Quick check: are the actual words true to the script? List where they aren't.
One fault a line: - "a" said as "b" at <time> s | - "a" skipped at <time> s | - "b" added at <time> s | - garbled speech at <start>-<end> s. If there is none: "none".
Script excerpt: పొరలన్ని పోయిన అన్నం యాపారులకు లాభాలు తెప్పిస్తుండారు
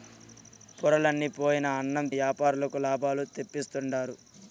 none